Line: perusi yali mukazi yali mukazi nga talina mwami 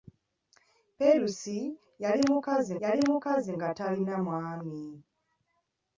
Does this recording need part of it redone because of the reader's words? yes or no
no